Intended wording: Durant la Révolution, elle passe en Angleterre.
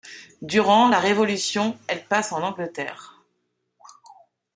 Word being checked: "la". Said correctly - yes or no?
yes